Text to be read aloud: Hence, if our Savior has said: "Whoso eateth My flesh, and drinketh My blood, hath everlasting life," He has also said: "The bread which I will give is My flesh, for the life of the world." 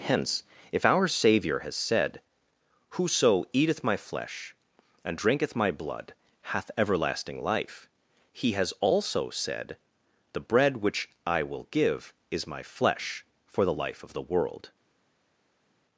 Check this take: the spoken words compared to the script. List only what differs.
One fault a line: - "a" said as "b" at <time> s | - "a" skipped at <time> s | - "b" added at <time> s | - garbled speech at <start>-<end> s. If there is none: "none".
none